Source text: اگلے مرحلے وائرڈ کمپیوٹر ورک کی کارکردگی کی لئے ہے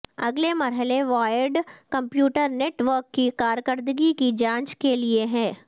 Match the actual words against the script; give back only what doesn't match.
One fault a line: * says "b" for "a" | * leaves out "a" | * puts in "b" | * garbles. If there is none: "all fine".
* puts in "نیٹ"
* puts in "جانچ کے"